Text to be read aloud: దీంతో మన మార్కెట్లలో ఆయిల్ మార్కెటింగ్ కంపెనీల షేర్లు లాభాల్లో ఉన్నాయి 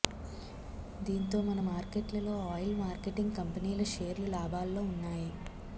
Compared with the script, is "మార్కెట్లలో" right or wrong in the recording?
right